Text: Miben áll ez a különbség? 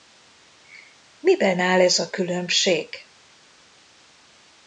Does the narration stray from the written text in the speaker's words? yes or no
no